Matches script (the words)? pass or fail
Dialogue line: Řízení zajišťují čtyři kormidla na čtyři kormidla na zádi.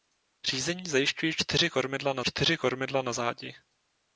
pass